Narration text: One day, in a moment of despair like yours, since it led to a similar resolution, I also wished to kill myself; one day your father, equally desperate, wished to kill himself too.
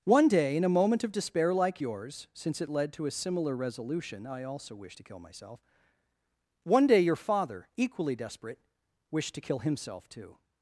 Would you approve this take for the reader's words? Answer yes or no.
yes